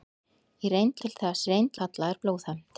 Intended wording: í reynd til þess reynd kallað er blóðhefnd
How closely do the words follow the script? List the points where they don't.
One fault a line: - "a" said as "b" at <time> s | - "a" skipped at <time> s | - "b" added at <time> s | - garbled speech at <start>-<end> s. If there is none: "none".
none